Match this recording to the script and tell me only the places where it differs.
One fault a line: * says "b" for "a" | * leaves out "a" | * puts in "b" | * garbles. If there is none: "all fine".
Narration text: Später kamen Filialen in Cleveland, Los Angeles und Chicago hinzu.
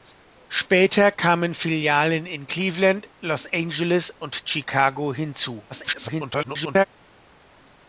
* garbles